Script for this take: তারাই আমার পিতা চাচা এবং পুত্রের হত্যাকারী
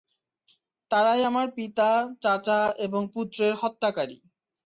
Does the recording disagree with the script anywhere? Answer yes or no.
no